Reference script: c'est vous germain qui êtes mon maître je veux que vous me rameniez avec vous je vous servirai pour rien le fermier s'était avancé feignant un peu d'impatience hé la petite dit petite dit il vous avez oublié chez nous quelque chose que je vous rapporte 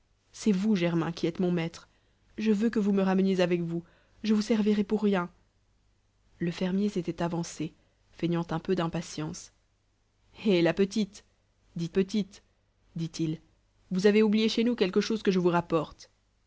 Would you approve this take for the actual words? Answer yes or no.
yes